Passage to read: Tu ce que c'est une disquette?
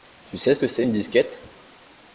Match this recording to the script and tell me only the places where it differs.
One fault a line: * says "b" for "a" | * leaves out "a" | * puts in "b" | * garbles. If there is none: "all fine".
* puts in "sais"